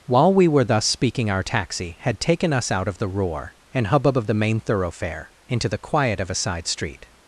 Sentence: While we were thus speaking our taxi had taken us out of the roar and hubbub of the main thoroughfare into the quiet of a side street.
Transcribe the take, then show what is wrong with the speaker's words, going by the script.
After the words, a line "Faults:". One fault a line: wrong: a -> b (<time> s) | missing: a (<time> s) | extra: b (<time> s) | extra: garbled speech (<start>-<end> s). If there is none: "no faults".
While we were thus speaking our taxi had taken us out of the roar and hubbub of the main thoroughfare into the quiet of a side street.
Faults:
no faults